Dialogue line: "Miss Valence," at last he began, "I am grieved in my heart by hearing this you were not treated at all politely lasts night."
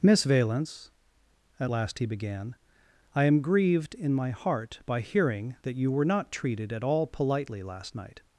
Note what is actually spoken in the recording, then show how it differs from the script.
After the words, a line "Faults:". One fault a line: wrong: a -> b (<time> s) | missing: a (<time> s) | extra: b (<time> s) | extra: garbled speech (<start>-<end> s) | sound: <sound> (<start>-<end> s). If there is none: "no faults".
"Miss Valence," at last he began, "I am grieved in my heart by hearing that you were not treated at all politely last night."
Faults:
wrong: this -> that (5.6 s)
wrong: lasts -> last (7.6 s)